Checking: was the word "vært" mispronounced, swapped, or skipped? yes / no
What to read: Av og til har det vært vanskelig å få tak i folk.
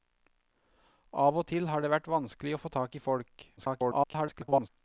no